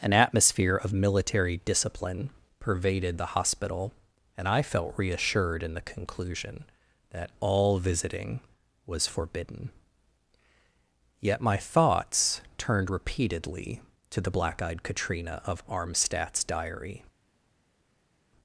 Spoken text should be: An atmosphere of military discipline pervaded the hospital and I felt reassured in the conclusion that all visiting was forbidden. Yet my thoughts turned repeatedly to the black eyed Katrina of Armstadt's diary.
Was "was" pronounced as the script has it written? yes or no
yes